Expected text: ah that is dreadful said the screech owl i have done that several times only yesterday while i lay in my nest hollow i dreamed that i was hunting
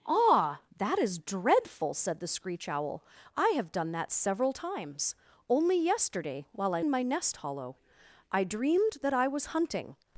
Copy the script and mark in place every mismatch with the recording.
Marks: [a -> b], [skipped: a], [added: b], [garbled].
ah that is dreadful said the screech owl i have done that several times only yesterday while i [skipped: lay] in my nest hollow i dreamed that i was hunting